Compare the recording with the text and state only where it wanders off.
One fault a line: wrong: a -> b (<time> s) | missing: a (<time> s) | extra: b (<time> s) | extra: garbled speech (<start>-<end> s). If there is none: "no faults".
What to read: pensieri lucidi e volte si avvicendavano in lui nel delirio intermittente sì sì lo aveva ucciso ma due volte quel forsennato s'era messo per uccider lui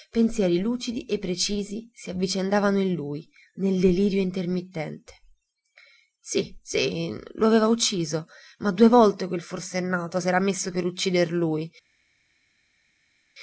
wrong: volte -> precisi (1.2 s)